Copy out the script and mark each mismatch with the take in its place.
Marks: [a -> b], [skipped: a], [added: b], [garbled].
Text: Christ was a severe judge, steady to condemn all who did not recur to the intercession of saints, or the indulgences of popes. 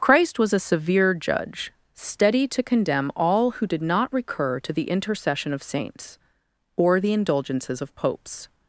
Christ was a severe judge, steady to condemn all who did not recur to the intercession of saints, or the indulgences of popes.